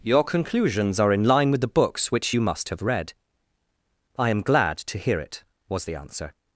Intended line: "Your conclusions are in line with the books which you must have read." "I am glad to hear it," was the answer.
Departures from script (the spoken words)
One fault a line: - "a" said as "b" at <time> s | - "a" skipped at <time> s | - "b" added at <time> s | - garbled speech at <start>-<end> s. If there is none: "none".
none